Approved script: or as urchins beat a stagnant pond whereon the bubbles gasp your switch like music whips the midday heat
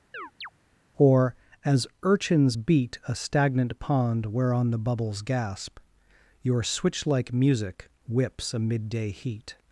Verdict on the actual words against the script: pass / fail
fail